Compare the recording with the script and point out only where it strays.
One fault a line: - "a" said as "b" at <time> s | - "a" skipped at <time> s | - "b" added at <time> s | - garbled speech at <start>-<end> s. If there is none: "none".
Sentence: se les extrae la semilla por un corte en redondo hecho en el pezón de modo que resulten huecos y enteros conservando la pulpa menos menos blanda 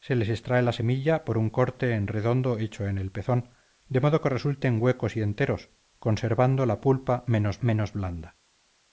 none